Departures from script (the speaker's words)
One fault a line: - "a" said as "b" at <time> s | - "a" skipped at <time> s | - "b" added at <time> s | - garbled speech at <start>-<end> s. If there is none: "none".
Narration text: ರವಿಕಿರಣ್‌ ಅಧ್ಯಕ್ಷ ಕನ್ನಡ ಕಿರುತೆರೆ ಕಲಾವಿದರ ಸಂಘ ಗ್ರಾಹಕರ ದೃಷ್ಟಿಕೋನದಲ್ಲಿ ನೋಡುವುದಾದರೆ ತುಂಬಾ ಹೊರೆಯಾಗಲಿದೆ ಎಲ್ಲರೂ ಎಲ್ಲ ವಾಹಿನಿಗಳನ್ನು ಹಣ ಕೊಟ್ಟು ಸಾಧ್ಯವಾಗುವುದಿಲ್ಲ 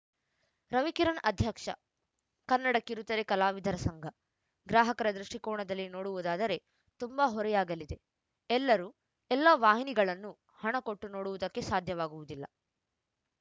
- "ನೋಡುವುದಕ್ಕೆ" added at 11.1 s